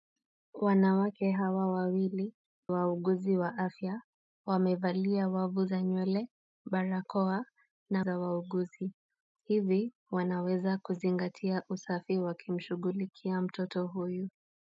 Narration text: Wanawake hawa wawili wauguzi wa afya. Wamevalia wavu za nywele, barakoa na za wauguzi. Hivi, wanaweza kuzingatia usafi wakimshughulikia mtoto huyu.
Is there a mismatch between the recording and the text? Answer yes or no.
no